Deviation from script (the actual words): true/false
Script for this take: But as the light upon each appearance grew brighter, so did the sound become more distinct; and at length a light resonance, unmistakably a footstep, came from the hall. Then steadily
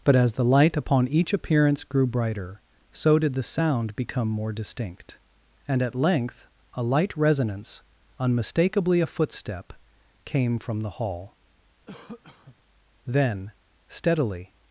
false